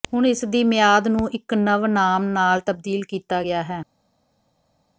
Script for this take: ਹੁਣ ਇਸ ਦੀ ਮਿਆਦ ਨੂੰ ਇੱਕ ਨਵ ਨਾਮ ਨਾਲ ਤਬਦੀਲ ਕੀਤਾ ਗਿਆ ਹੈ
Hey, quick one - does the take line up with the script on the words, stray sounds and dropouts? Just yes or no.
yes